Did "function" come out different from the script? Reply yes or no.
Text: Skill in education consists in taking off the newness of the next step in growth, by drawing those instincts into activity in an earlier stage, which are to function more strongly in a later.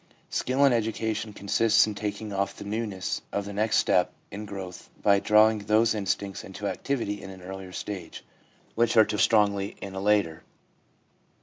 yes